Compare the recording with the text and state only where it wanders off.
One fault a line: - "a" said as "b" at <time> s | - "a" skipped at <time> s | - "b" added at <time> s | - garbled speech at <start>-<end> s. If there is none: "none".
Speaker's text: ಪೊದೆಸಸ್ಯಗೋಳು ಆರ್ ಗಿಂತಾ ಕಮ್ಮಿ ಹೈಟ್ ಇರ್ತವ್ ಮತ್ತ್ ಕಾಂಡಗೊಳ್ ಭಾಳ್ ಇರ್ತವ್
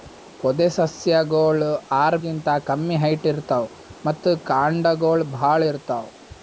none